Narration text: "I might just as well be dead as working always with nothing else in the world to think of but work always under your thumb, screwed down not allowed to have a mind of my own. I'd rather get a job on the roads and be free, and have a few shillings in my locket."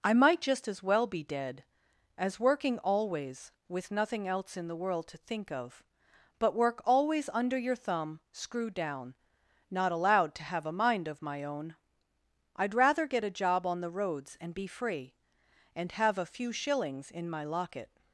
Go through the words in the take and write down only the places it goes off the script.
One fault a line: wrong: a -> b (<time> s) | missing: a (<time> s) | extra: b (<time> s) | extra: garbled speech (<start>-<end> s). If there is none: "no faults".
no faults